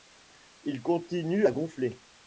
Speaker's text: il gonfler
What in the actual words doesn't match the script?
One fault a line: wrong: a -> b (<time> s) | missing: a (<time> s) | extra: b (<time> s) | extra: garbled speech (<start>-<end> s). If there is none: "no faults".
extra: continue à (0.8 s)